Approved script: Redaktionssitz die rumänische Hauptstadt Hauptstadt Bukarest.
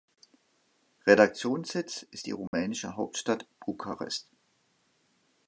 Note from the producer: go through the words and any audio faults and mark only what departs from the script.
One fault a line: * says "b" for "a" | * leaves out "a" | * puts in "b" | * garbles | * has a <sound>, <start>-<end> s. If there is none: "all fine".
* puts in "ist"
* has a dropout, 2.5-2.5 s
* leaves out "Hauptstadt"